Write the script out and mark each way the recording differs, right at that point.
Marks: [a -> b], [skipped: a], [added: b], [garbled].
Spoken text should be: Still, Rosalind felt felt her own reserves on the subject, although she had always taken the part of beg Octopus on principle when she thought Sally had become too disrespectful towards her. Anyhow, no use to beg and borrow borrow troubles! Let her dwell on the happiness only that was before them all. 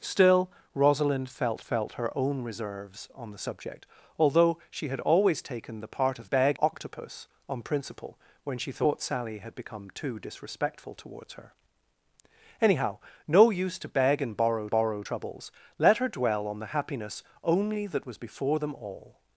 Still, Rosalind felt felt her own reserves on the subject, although she had always taken the part of beg Octopus on principle when she thought Sally had become too disrespectful towards her. Anyhow, no use to beg and borrow borrow troubles! Let her dwell on the happiness only that was before them all.